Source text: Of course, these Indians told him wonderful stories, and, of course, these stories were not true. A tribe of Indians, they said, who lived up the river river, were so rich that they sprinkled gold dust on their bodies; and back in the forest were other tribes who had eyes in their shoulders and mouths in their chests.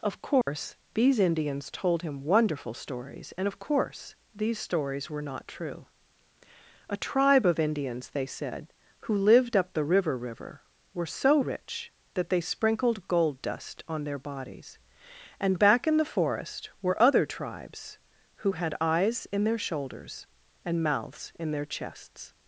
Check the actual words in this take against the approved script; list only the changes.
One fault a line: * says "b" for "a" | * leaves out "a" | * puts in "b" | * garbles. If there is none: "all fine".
all fine